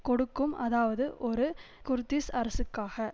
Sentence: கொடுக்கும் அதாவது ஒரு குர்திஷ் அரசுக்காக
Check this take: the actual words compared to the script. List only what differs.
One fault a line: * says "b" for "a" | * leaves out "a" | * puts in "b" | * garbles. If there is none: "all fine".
all fine